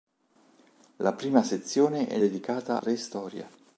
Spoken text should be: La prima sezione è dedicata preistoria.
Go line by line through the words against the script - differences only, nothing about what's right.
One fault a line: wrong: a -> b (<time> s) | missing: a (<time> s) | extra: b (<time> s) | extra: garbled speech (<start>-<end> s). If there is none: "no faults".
no faults